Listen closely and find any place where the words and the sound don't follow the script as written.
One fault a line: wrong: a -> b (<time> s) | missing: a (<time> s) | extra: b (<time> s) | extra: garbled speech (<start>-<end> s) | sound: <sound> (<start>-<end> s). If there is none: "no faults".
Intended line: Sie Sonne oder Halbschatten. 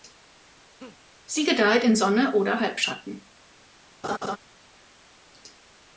sound: laugh (0.8-1.0 s)
extra: gedeiht in (1.4 s)
sound: laugh (4.0-4.4 s)